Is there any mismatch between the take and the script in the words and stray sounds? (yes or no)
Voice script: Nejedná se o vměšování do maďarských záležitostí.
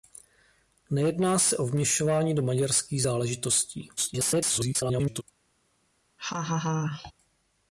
yes